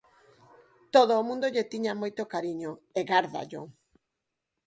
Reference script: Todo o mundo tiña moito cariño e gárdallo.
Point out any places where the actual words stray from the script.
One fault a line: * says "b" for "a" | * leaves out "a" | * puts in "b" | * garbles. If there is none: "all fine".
* puts in "lle"